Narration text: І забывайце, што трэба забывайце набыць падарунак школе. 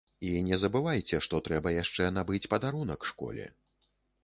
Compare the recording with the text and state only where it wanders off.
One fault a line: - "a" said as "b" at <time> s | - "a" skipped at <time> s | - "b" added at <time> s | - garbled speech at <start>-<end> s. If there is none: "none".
- "не" added at 0.4 s
- "забывайце" said as "яшчэ" at 1.8 s